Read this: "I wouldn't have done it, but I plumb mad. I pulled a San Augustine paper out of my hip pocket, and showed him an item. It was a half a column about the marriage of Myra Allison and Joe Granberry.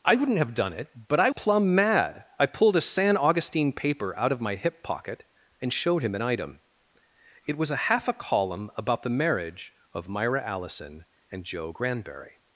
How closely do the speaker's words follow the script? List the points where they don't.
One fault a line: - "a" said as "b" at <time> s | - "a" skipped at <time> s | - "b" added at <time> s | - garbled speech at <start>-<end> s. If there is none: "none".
none